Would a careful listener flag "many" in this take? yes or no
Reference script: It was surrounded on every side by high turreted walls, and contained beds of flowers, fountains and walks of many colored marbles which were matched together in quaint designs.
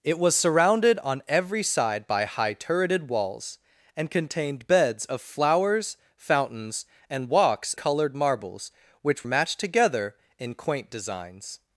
yes